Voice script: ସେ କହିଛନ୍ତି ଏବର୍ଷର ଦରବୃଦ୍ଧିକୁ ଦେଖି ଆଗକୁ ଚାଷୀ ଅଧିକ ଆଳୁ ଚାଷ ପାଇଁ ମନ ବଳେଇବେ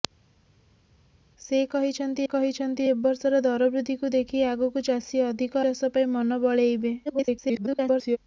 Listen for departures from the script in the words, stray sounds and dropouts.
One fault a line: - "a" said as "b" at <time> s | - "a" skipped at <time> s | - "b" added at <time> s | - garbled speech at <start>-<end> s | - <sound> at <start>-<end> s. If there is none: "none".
- "କହିଛନ୍ତି" added at 2.3 s
- "ଆଳୁ" skipped at 5.6 s
- garbled speech at 7.0-8.2 s